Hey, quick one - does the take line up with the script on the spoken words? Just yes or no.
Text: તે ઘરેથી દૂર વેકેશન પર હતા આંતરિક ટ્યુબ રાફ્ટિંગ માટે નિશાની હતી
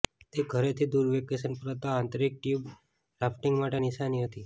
yes